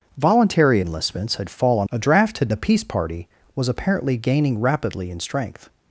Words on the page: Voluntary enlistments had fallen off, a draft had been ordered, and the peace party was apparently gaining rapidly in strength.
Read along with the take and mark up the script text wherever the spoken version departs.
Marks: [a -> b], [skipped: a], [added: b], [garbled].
Voluntary enlistments had fallen [skipped: off,] a draft had [skipped: been ordered, and] the peace party was apparently gaining rapidly in strength.